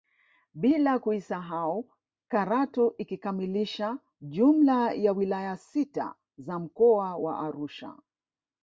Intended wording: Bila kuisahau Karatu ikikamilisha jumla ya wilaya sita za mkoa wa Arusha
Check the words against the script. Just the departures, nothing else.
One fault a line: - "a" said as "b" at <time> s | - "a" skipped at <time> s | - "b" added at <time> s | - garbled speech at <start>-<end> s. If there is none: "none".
none